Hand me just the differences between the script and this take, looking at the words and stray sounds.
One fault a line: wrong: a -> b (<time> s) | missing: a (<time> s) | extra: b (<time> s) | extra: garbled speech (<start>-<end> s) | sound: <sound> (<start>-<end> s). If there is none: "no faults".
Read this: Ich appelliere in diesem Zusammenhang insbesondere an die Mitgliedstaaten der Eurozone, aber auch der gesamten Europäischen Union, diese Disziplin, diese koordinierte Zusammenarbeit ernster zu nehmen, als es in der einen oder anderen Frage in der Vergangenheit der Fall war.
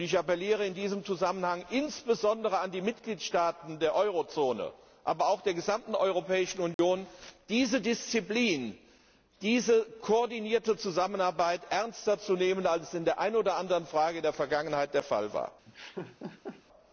sound: dropout (6.7-6.8 s)
sound: laugh (15.6-16.6 s)